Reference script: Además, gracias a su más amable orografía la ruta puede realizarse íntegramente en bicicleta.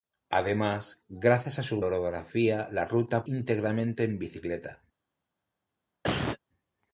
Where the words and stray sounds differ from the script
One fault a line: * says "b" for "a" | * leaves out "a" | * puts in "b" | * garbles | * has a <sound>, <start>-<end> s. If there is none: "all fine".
* leaves out "más amable"
* leaves out "puede realizarse"
* has a cough, 6.0-6.4 s